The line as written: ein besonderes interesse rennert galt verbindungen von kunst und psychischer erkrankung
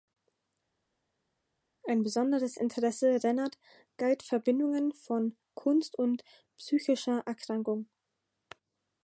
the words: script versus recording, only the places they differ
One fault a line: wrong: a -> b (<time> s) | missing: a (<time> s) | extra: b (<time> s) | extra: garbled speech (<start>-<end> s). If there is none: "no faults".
no faults